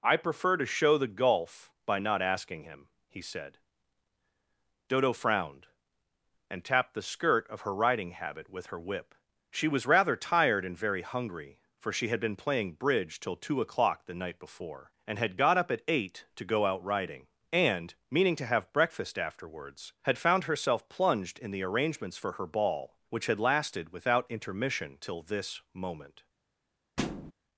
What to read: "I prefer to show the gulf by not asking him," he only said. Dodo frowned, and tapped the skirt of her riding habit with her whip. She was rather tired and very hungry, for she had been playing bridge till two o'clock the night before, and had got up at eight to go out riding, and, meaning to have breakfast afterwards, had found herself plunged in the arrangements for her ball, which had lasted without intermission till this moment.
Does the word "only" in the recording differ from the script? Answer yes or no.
yes